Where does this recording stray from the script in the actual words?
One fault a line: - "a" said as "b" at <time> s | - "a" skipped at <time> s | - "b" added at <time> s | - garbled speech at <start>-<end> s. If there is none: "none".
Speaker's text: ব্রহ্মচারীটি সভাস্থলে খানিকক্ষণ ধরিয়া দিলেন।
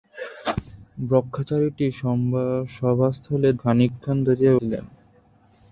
none